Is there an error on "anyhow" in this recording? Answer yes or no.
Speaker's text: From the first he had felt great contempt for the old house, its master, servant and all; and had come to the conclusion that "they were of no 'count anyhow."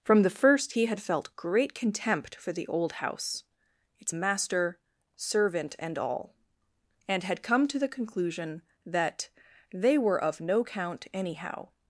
no